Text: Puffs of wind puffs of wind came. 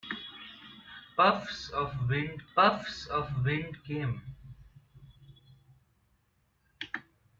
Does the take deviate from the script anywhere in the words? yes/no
no